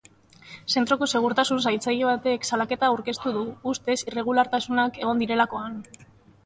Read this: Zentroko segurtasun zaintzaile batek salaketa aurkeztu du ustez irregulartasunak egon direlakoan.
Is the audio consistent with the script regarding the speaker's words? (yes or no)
yes